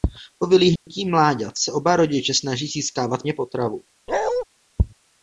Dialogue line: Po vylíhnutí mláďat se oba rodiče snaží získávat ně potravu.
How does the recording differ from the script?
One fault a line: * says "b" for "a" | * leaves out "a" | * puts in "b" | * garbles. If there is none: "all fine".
all fine